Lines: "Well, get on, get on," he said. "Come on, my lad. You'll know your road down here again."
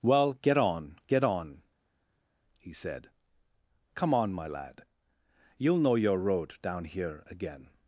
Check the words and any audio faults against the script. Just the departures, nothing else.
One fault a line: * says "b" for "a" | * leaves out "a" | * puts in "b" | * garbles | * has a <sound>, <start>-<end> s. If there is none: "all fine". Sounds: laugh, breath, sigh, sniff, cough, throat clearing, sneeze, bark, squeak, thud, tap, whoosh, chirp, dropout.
all fine